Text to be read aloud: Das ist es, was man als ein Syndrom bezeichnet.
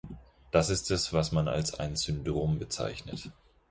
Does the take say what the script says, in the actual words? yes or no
yes